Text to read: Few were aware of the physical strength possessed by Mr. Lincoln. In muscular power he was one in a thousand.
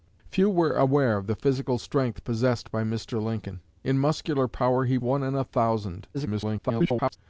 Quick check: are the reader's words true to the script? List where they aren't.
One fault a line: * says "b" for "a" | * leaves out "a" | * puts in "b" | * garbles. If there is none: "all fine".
* leaves out "was"
* garbles